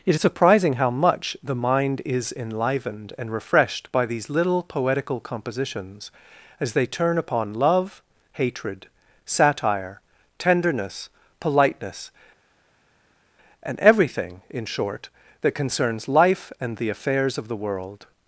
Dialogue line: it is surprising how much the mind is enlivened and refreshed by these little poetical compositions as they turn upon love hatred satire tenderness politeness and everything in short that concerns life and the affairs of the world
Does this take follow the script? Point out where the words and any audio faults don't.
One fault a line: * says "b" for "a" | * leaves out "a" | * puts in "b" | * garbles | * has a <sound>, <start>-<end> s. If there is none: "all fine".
all fine